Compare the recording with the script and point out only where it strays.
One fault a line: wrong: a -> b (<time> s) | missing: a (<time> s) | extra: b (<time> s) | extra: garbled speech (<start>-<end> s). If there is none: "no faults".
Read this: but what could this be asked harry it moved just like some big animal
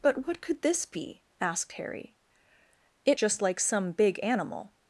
missing: moved (3.2 s)